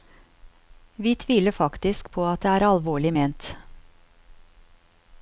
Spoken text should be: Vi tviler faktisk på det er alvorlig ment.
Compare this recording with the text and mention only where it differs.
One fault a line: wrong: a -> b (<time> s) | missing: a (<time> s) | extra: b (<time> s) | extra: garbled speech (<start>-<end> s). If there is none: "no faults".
extra: at (2.3 s)